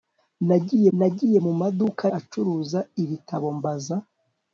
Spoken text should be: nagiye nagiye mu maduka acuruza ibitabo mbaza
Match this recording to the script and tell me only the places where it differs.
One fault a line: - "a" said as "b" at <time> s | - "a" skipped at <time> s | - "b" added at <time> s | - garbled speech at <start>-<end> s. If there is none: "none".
none